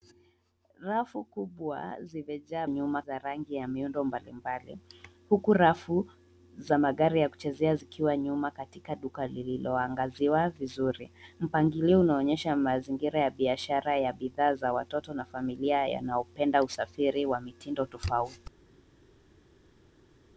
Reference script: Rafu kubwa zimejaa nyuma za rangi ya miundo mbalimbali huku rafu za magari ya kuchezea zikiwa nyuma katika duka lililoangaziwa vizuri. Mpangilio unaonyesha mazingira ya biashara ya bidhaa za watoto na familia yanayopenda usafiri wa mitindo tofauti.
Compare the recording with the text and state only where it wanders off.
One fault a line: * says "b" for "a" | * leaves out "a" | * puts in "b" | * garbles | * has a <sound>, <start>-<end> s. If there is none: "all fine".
all fine